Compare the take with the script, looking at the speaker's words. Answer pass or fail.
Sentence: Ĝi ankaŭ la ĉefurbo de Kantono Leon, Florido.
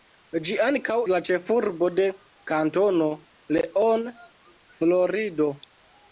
pass